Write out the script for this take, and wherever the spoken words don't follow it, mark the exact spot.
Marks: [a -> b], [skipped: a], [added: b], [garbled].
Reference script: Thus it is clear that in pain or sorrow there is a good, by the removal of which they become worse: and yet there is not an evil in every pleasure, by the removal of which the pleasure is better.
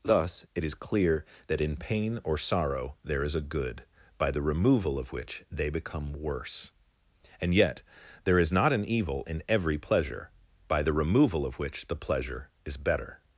Thus it is clear that in pain or sorrow there is a good, by the removal of which they become worse: and yet there is not an evil in every pleasure, by the removal of which the pleasure is better.